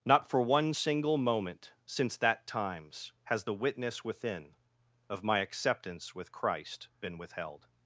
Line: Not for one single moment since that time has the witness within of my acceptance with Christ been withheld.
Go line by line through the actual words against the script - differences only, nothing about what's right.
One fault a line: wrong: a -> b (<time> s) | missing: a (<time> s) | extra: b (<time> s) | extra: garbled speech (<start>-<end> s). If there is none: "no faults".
wrong: time -> times (2.5 s)